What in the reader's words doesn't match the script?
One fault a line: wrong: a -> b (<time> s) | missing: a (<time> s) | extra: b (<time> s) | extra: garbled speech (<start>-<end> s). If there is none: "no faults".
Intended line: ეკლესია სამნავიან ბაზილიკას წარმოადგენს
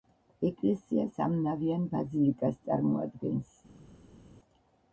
no faults